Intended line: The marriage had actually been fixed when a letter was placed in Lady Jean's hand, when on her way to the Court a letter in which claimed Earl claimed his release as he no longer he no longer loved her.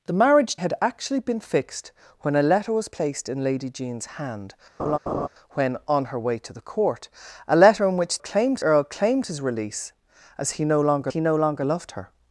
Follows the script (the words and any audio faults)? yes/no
no